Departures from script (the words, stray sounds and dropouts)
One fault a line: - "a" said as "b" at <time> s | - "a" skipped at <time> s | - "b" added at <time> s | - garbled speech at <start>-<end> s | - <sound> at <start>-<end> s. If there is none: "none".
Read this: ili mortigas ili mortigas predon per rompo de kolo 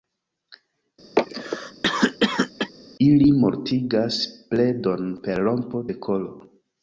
- cough at 1.2-2.7 s
- "ili mortigas" skipped at 4.2 s